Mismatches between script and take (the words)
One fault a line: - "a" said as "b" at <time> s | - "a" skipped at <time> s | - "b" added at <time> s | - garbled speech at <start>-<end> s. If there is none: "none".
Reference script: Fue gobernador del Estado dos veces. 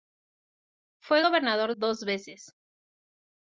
- "del Estado" skipped at 1.7 s